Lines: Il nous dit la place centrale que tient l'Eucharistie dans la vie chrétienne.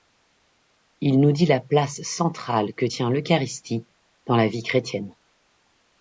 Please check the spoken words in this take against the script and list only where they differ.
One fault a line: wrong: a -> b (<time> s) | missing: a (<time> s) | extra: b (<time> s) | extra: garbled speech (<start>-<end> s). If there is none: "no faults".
no faults